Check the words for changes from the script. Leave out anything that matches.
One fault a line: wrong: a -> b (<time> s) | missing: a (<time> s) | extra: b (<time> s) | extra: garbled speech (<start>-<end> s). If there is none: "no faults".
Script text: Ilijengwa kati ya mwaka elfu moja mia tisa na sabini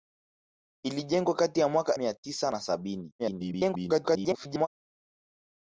missing: elfu moja (2.0 s)
extra: garbled speech (3.2-4.7 s)